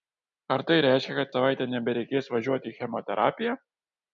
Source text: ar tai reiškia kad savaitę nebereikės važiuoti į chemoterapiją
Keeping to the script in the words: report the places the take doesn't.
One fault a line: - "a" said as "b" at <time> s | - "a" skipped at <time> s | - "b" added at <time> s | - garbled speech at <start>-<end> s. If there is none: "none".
none